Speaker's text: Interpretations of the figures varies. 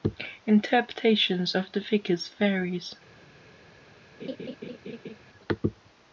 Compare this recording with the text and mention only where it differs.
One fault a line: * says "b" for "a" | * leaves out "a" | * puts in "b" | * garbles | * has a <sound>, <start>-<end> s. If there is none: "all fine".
* has a laugh, 4.2-5.2 s